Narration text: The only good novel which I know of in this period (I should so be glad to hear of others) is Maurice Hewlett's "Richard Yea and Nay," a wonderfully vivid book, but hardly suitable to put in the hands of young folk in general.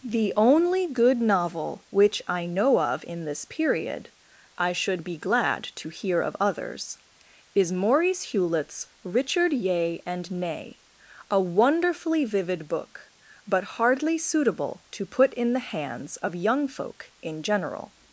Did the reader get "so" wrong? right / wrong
wrong